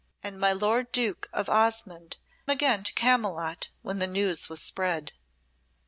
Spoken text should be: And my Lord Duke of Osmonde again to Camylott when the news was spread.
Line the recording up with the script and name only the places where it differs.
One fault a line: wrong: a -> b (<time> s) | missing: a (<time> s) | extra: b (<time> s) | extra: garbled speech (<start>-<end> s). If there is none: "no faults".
no faults